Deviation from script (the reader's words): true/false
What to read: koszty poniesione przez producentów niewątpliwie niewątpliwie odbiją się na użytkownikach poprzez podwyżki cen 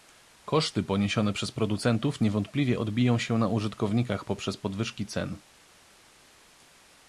true